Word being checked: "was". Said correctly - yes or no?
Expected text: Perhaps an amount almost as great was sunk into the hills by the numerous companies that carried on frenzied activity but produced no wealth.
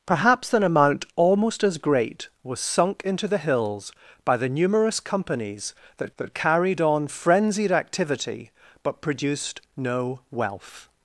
yes